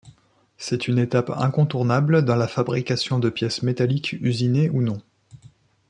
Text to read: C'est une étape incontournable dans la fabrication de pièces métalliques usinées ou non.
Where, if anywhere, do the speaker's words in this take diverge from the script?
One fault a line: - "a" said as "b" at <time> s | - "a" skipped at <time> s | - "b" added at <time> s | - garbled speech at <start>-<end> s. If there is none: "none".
none